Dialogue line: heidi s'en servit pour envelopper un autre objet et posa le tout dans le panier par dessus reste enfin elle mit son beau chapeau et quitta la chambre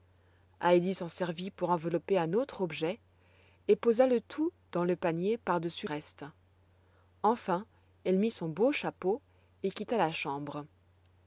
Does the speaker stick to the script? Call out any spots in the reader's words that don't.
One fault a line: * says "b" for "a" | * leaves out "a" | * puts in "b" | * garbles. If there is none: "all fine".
all fine